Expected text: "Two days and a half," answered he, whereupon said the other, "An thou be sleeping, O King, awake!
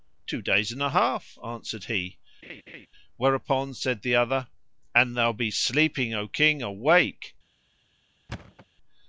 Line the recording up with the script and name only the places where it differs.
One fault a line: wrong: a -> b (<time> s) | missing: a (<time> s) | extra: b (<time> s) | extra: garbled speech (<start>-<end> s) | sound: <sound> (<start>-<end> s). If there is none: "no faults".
sound: laugh (2.4-2.9 s)
sound: thud (8.3-8.7 s)